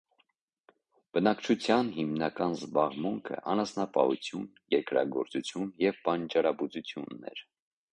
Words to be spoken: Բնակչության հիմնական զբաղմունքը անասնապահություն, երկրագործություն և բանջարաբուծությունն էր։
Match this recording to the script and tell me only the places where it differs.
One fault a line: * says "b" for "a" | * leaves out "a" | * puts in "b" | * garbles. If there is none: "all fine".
all fine